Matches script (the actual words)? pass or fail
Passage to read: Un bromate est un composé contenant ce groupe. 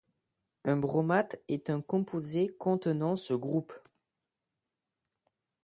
pass